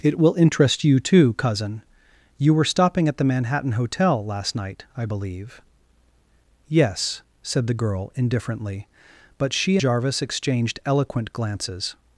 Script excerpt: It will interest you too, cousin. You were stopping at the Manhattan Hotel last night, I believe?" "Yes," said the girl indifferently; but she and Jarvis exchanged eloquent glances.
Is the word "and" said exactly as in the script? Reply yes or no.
no